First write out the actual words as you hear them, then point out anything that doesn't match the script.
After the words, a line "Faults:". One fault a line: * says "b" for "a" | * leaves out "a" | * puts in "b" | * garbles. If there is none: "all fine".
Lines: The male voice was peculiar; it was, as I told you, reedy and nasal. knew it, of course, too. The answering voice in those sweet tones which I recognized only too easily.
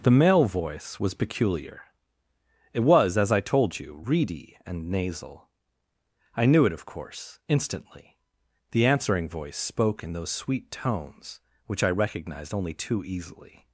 The male voice was peculiar; it was, as I told you, reedy and nasal. I knew it, of course, instantly. The answering voice spoke in those sweet tones which I recognized only too easily.
Faults:
* puts in "I"
* says "instantly" for "too"
* puts in "spoke"